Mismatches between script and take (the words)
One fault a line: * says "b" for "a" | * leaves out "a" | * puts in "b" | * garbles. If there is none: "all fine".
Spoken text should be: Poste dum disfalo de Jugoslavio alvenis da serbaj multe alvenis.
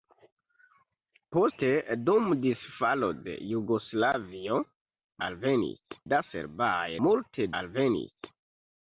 all fine